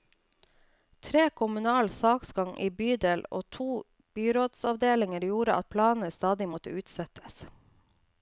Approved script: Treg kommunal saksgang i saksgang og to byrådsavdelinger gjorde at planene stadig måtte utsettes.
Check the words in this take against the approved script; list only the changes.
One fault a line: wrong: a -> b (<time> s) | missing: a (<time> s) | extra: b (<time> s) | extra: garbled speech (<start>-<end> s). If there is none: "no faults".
wrong: saksgang -> bydel (2.8 s)